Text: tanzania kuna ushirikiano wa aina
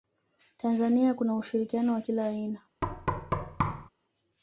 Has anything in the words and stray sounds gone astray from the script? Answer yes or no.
yes